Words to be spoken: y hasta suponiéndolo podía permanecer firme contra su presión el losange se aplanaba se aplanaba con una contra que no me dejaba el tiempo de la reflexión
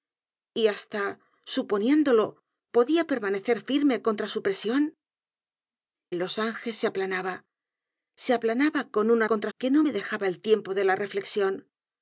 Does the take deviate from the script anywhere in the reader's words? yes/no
no